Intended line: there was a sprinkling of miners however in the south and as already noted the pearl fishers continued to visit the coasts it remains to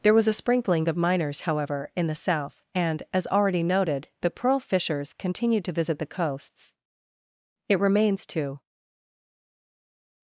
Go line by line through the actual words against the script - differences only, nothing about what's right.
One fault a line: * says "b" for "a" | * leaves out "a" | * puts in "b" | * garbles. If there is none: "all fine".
all fine